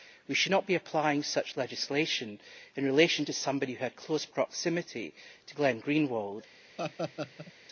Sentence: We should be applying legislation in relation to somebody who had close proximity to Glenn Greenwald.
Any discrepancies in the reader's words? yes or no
yes